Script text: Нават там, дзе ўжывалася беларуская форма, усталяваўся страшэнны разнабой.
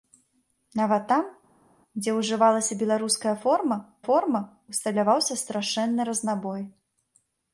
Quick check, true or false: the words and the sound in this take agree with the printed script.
false